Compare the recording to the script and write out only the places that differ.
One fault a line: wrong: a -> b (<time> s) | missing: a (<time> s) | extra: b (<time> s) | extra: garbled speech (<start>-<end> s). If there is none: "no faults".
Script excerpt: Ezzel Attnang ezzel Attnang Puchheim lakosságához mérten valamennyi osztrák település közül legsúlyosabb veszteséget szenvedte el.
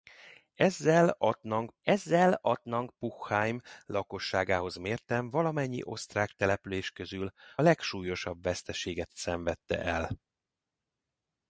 no faults